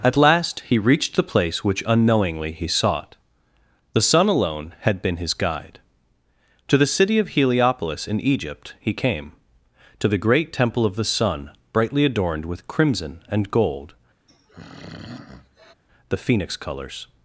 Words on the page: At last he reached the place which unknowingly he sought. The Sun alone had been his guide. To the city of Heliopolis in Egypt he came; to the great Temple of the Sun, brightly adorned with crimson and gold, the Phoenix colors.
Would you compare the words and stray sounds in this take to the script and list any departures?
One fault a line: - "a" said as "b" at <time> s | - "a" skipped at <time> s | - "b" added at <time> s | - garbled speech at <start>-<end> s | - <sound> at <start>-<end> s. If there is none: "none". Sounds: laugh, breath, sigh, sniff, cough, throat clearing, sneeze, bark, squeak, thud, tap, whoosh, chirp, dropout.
- throat clearing at 14.3-15.7 s